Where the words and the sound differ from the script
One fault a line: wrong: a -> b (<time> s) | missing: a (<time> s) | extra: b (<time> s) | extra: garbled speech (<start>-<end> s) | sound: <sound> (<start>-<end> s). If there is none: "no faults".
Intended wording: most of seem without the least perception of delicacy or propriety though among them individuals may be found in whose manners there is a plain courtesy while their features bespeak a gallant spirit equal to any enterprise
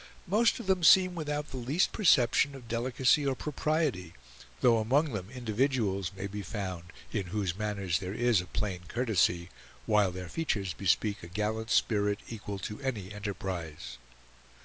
extra: them (0.7 s)